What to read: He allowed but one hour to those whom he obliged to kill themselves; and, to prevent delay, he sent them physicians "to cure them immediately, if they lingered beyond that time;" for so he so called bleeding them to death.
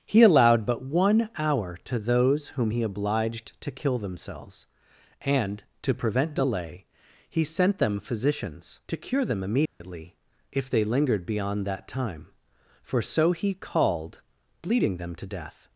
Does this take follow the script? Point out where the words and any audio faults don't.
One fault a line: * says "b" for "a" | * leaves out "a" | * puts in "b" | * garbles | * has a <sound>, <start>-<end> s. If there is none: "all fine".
* has a dropout, 9.7-9.8 s
* leaves out "so"